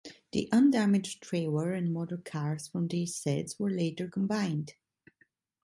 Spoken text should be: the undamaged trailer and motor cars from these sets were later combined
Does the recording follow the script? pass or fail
pass